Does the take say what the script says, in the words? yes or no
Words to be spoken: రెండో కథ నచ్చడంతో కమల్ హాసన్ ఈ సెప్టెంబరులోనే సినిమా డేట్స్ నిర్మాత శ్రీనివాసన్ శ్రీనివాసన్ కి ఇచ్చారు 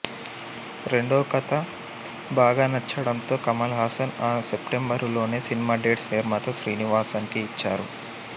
no